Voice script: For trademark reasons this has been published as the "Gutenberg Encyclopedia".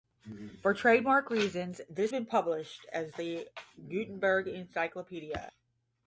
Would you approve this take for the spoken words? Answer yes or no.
no